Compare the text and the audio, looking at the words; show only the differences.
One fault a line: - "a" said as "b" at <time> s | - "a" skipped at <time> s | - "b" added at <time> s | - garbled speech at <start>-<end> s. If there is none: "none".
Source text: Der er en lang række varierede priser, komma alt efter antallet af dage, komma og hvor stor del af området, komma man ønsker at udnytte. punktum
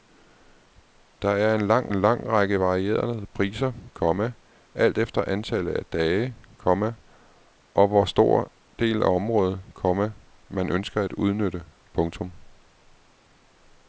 - "en lang" added at 1.9 s